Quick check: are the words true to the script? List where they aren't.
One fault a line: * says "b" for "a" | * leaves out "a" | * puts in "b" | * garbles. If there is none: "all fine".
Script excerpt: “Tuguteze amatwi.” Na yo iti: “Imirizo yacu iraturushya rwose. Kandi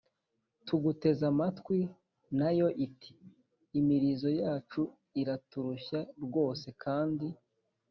all fine